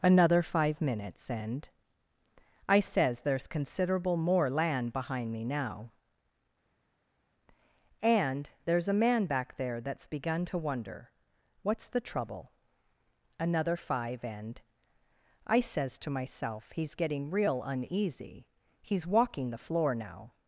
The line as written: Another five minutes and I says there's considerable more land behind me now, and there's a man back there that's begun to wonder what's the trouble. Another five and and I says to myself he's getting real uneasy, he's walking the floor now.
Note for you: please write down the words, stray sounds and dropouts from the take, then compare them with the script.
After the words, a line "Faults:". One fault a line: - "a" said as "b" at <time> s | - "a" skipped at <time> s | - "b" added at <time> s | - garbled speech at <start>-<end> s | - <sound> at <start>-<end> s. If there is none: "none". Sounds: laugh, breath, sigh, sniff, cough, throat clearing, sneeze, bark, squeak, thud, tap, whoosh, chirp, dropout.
Another five minutes and I says there's considerable more land behind me now, and there's a man back there that's begun to wonder what's the trouble. Another five and I says to myself he's getting real uneasy, he's walking the floor now.
Faults:
- "and" skipped at 14.6 s